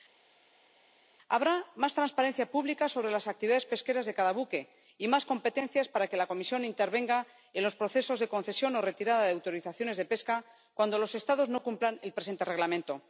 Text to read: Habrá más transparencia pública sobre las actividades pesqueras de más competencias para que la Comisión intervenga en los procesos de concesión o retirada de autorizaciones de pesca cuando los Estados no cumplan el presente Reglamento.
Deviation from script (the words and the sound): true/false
true